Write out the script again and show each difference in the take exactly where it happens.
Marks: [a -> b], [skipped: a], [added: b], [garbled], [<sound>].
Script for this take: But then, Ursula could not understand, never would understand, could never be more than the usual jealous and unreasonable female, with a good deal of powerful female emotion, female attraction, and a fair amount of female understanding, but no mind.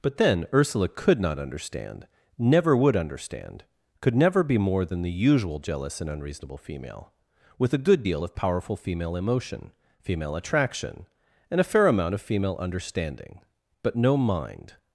But then, Ursula could not understand, never would understand, could never be more than the usual jealous and unreasonable female, with a good deal of powerful female emotion, female attraction, and a fair amount of female understanding, but no mind.